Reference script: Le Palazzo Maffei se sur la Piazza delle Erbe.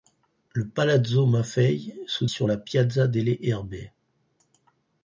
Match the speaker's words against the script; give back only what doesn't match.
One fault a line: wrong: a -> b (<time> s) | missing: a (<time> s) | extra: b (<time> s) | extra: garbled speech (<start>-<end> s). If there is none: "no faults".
no faults